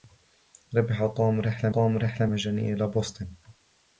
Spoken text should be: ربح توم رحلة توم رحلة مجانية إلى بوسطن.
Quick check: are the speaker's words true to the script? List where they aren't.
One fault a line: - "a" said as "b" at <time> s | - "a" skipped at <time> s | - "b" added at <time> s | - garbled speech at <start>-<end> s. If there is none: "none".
none